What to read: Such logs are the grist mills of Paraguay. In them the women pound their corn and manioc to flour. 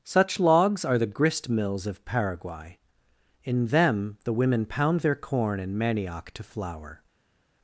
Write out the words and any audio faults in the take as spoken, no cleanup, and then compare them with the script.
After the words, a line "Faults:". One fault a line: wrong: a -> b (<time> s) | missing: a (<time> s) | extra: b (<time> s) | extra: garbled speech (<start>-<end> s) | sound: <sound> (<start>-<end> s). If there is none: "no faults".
Such logs are the grist mills of Paraguay. In them the women pound their corn and manioc to flour.
Faults:
no faults